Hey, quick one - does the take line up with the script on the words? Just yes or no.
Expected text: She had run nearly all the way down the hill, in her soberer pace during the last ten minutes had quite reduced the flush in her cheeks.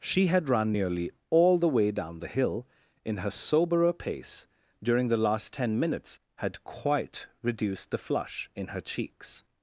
yes